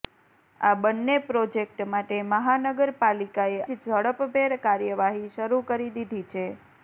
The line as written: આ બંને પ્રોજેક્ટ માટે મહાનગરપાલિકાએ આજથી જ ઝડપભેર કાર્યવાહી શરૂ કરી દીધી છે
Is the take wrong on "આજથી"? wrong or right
wrong